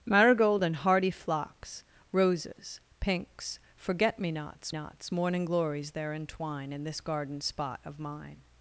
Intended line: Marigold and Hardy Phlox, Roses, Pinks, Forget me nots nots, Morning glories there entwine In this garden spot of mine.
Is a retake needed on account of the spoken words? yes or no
no